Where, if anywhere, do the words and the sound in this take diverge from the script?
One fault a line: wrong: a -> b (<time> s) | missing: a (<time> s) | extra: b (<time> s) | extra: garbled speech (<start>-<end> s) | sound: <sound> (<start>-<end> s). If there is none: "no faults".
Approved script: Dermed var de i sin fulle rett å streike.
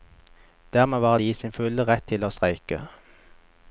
extra: til (2.1 s)